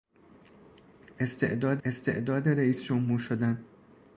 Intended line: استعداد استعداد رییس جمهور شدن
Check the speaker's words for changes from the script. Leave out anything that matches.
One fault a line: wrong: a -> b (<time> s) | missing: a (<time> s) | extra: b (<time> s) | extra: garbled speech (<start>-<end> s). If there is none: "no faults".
no faults